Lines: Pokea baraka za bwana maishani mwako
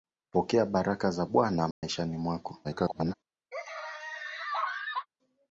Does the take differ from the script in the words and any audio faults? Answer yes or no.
yes